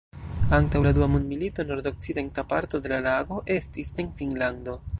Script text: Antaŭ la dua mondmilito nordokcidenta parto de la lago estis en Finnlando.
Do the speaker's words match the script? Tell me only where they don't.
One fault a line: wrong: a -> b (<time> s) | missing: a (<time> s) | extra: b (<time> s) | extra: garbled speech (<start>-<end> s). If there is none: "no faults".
no faults